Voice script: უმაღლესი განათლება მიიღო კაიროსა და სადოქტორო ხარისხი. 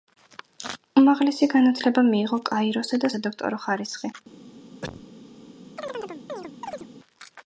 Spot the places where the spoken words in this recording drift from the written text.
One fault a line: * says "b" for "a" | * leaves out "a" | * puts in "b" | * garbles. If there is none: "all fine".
all fine